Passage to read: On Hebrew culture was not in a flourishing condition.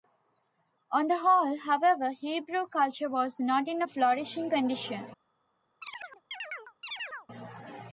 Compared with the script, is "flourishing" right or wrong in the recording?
right